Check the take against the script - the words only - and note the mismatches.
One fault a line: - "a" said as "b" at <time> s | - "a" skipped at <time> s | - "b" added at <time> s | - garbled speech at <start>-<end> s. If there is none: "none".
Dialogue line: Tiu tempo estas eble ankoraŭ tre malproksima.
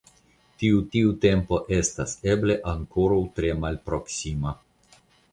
- "tiu" added at 0.9 s